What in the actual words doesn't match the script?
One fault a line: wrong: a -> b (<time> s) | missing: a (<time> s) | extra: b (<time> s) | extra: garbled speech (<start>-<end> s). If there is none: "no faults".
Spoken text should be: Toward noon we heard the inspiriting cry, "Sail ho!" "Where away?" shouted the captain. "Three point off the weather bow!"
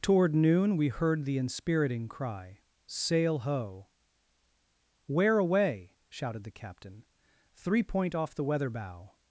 no faults